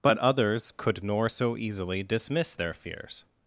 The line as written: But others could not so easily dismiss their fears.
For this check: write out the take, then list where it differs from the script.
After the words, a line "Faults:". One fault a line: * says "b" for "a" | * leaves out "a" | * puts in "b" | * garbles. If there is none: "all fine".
But others could nor so easily dismiss their fears.
Faults:
* says "nor" for "not"